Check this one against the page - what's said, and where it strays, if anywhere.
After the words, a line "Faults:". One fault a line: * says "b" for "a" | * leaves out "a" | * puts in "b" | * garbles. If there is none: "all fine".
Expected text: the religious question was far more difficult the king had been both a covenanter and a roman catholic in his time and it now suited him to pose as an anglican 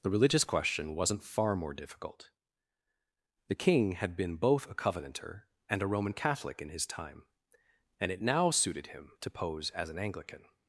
the religious question wasn't far more difficult the king had been both a covenanter and a roman catholic in his time and it now suited him to pose as an anglican
Faults:
* says "wasn't" for "was"